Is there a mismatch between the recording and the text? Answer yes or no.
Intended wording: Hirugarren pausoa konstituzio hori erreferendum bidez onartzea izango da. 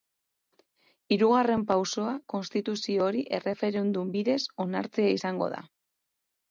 no